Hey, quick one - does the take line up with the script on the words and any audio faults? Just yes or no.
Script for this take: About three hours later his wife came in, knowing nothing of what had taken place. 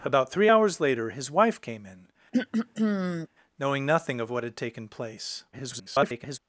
no